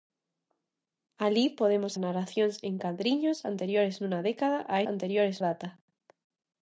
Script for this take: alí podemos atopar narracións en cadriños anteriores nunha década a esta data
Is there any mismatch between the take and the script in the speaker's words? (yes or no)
yes